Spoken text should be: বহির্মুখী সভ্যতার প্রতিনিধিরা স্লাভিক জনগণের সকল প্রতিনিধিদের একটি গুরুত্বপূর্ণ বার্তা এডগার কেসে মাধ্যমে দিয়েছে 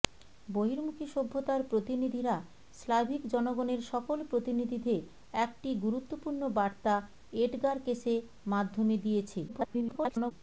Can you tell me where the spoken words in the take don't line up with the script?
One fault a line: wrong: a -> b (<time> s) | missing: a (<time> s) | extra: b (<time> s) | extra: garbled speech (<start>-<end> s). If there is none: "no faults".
extra: garbled speech (9.5-10.3 s)